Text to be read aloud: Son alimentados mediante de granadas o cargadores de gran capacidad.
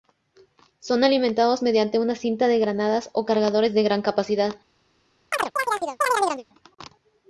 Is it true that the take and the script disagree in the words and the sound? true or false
true